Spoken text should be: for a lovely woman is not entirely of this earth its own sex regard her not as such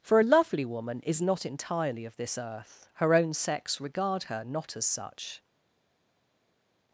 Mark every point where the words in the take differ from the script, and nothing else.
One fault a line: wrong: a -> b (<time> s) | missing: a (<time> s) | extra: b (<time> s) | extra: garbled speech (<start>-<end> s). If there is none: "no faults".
wrong: its -> her (3.0 s)